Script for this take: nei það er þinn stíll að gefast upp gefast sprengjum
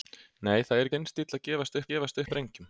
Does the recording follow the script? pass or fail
pass